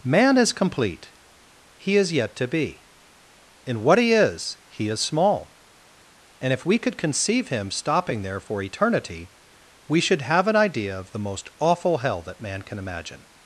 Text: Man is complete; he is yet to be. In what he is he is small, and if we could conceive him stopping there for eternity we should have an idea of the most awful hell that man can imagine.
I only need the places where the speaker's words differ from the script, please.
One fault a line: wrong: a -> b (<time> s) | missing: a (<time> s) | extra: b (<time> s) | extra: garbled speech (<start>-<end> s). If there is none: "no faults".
no faults